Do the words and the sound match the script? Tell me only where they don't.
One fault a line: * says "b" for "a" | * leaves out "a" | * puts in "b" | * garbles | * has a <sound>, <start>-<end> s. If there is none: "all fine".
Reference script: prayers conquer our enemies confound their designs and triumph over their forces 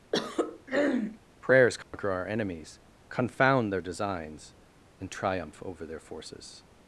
* has a throat clearing, 0.1-1.2 s
* has a dropout, 1.8-1.9 s